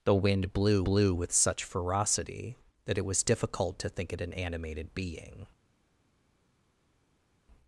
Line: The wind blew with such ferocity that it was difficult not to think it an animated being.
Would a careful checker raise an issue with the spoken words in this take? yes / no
yes